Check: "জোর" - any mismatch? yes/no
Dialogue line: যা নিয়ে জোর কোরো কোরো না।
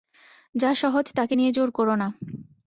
no